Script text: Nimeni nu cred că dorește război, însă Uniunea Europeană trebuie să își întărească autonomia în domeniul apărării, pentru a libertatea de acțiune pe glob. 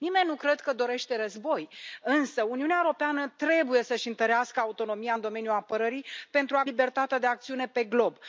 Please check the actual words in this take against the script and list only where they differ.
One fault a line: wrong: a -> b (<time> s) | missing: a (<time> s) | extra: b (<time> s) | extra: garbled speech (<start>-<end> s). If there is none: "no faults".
no faults